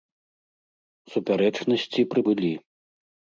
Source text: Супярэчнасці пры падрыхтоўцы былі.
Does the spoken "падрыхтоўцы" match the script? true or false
false